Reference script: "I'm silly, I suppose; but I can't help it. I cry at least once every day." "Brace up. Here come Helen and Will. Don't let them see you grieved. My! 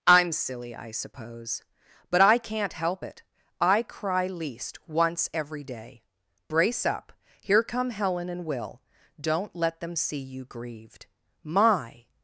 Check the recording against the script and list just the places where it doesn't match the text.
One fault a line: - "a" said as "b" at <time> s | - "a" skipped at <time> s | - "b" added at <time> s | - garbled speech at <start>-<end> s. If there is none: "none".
- "at" skipped at 4.3 s